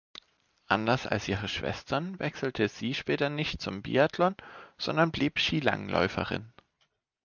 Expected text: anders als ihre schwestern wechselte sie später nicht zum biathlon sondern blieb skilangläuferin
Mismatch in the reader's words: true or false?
false